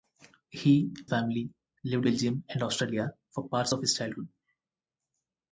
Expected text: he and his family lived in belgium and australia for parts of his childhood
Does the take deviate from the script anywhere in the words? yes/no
yes